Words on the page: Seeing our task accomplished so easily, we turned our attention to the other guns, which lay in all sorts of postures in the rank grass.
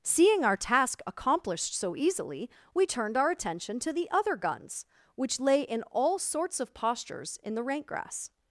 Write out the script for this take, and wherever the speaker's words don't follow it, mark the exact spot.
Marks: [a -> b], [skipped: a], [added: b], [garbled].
Seeing our task accomplished so easily, we turned our attention to the other guns, which lay in all sorts of postures in the rank grass.